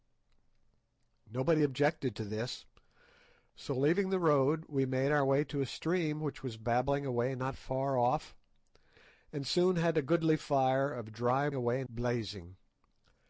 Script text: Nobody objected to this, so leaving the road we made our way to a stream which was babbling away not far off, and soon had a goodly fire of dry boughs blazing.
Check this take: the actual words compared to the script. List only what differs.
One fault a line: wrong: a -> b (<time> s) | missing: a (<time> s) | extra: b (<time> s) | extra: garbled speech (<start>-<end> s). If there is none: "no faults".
wrong: boughs -> away (11.5 s)